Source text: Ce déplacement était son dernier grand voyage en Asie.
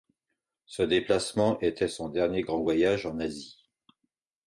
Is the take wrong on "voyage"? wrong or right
right